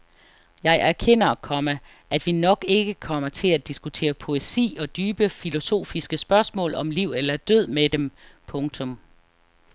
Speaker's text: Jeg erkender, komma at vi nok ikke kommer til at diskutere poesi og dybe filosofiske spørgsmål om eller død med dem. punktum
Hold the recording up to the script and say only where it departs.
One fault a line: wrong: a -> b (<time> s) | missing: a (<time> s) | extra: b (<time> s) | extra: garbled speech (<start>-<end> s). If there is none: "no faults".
extra: liv (6.9 s)